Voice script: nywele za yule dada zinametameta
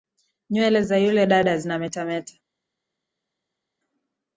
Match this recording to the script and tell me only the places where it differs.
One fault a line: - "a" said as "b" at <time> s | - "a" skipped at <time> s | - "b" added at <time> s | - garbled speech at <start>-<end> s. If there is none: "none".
none